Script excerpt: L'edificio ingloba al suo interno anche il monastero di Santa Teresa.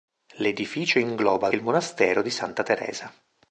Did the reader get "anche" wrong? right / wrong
wrong